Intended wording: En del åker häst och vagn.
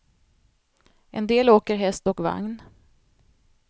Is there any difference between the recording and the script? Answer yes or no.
no